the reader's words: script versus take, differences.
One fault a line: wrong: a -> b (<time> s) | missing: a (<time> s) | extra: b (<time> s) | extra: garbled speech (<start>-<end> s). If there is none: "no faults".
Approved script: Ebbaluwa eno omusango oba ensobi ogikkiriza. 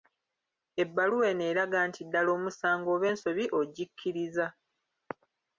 extra: eraga nti ddala (1.5 s)